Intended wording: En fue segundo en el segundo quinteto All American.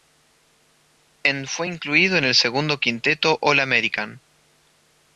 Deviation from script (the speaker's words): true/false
true